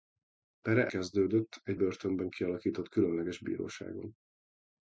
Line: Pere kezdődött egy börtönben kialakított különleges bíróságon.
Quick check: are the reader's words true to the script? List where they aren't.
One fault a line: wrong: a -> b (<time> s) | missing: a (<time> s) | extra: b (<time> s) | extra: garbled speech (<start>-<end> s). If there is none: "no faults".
no faults